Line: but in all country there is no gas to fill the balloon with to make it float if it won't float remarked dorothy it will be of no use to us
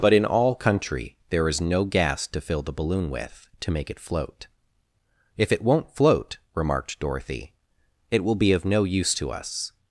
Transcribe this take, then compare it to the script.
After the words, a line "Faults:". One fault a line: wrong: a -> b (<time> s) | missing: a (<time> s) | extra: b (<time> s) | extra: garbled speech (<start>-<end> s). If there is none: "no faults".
but in all country there is no gas to fill the balloon with to make it float if it won't float remarked dorothy it will be of no use to us
Faults:
no faults